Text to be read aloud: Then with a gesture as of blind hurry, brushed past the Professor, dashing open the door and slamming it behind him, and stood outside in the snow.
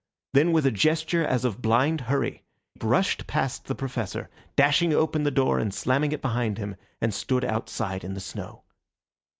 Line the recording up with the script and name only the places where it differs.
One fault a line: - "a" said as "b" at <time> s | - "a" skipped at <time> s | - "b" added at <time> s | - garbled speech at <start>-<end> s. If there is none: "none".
none